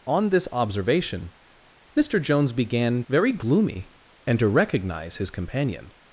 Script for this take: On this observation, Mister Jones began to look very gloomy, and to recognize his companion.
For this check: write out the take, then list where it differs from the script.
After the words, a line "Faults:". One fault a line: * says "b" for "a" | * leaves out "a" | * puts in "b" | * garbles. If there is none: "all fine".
On this observation, Mister Jones began very gloomy, and to recognize his companion.
Faults:
* leaves out "to look"